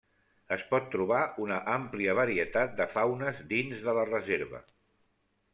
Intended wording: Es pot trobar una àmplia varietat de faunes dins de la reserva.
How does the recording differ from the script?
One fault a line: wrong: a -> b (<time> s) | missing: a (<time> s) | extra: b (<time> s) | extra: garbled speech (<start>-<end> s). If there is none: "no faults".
no faults